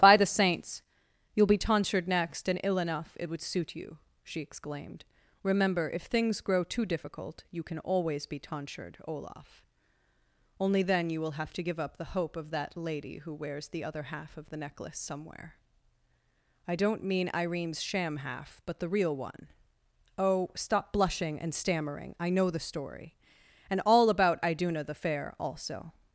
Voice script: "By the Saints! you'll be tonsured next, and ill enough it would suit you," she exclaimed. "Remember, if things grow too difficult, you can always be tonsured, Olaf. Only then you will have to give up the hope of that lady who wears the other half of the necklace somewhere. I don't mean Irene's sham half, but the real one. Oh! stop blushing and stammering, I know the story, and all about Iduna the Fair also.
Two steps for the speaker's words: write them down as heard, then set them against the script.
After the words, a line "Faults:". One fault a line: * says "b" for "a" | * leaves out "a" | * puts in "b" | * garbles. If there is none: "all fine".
"By the Saints! you'll be tonsured next, and ill enough it would suit you," she exclaimed. "Remember, if things grow too difficult, you can always be tonsured, Olaf. Only then you will have to give up the hope of that lady who wears the other half of the necklace somewhere. I don't mean Irene's sham half, but the real one. Oh! stop blushing and stammering, I know the story, and all about Iduna the Fair also.
Faults:
all fine